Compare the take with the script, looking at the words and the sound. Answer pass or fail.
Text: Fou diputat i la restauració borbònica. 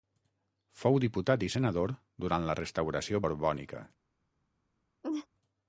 fail